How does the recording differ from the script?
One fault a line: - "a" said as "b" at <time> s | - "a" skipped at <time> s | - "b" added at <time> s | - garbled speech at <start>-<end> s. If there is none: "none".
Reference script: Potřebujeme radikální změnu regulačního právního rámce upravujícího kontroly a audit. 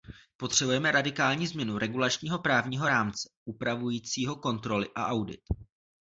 none